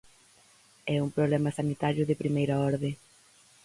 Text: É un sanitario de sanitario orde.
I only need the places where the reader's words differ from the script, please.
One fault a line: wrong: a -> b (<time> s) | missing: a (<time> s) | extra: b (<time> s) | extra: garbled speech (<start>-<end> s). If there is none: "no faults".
extra: problema (1.2 s)
wrong: sanitario -> primeira (2.2 s)